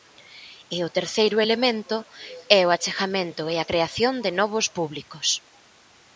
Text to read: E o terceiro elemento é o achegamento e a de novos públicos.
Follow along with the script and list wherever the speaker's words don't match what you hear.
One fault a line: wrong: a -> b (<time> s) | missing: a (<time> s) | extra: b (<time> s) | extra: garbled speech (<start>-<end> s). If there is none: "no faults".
extra: creación (3.7 s)